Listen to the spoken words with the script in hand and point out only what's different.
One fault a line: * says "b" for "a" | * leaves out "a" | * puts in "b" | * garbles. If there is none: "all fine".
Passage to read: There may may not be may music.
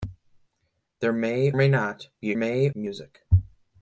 all fine